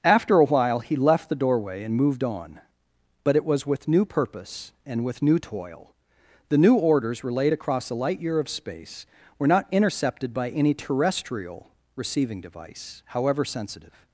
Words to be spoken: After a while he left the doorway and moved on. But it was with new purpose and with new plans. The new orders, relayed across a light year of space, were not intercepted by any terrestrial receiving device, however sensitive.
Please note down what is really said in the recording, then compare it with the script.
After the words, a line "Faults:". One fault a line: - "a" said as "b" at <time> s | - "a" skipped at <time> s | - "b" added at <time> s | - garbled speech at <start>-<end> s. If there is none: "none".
After a while he left the doorway and moved on. But it was with new purpose and with new toil. The new orders, relayed across a light year of space, were not intercepted by any terrestrial receiving device, however sensitive.
Faults:
- "plans" said as "toil" at 5.4 s